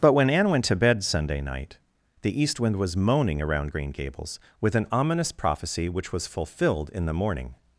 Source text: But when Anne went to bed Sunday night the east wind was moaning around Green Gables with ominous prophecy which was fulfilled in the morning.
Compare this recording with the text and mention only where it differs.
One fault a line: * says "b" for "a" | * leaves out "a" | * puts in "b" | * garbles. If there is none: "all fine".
* puts in "an"